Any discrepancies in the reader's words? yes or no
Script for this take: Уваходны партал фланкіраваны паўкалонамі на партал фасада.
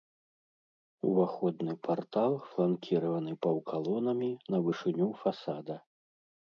yes